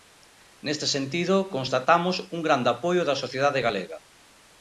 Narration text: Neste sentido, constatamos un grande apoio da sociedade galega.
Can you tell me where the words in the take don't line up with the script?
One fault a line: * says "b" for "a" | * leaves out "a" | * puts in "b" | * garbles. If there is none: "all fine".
all fine